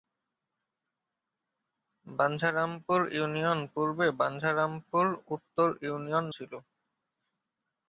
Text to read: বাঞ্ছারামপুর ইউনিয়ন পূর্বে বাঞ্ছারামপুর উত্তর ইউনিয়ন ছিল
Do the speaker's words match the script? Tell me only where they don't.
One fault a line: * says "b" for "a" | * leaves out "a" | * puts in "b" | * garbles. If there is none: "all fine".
all fine